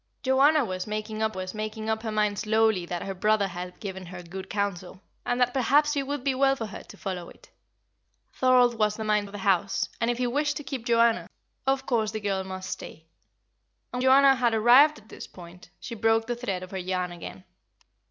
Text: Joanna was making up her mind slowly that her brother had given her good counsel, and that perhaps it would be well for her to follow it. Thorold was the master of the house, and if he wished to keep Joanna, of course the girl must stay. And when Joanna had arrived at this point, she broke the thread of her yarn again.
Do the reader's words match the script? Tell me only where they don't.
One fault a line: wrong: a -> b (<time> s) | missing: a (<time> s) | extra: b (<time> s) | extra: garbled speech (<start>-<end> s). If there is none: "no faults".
extra: was making up (1.3 s)
wrong: master -> mind (9.0 s)
missing: when (14.0 s)